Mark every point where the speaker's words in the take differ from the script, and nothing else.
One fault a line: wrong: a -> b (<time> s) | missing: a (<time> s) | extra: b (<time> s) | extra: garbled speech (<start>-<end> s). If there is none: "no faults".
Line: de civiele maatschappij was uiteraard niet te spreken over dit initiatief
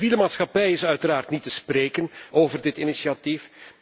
wrong: was -> is (0.7 s)